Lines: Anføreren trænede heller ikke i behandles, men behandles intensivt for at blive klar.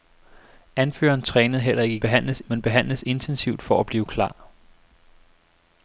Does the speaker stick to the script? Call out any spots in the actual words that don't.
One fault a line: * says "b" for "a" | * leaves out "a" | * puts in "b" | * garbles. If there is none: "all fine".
all fine